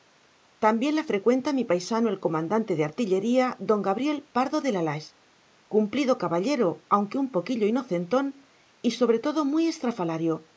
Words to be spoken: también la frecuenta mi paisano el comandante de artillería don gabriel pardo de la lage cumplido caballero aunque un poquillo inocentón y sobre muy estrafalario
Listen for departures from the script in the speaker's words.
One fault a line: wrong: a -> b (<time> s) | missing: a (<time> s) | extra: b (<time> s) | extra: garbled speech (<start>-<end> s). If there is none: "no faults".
extra: todo (9.2 s)